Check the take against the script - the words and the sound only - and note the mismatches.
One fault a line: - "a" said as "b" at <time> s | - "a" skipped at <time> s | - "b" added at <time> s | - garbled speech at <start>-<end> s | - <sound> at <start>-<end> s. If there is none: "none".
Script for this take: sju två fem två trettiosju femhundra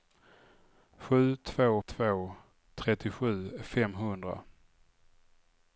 - "fem" skipped at 1.8 s